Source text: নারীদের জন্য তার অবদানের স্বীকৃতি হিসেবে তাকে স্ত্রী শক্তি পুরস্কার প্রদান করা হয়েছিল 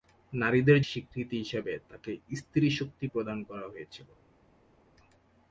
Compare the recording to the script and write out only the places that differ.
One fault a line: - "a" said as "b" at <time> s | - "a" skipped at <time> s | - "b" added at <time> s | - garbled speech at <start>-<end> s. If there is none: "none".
- "জন্য তার অবদানের" skipped at 0.8 s
- "পুরস্কার" skipped at 3.1 s